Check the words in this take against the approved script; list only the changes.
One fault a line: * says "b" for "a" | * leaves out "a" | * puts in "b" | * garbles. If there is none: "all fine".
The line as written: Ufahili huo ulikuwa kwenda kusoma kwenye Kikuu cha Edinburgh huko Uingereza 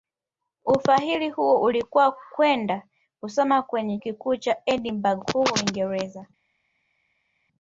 all fine